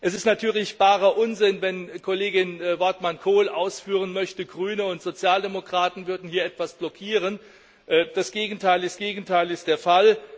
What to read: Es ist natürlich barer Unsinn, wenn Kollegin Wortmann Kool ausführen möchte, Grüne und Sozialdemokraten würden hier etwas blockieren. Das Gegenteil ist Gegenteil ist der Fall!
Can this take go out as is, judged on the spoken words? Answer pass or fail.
pass